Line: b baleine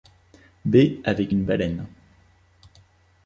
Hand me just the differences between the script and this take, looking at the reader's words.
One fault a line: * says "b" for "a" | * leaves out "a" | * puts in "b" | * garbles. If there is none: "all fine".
* puts in "avec une"